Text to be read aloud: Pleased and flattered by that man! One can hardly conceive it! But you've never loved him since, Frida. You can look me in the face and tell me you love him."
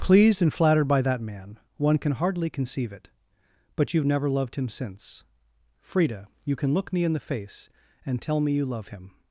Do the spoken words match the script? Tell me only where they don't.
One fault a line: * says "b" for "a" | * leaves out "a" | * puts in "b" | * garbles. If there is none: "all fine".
all fine